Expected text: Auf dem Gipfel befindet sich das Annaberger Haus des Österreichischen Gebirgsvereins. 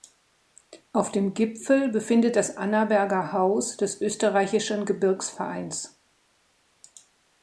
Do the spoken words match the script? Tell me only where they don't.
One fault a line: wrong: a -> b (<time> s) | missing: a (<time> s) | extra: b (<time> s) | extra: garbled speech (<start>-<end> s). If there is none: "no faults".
missing: sich (2.4 s)